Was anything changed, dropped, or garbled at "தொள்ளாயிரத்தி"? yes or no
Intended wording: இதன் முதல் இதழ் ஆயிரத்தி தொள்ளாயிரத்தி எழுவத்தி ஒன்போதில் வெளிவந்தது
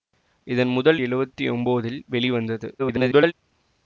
yes